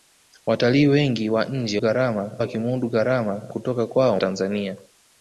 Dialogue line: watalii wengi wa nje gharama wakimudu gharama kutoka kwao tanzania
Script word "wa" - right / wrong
right